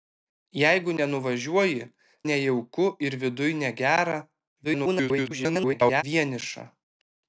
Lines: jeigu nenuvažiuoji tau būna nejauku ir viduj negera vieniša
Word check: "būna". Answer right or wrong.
wrong